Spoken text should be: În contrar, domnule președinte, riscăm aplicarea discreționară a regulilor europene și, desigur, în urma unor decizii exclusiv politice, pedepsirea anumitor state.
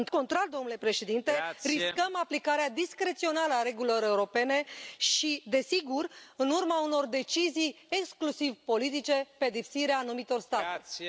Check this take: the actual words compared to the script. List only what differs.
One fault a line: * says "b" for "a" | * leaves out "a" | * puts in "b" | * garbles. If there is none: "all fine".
all fine